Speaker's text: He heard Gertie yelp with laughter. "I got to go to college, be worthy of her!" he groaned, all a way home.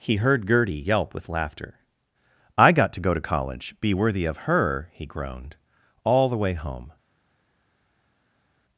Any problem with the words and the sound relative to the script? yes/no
yes